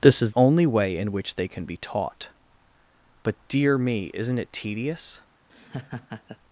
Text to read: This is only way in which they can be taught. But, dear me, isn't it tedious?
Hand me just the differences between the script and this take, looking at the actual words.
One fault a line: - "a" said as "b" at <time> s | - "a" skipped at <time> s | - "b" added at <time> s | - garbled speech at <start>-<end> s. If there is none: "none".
none